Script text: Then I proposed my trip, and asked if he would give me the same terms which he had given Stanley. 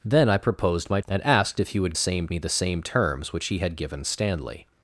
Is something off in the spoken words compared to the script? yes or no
yes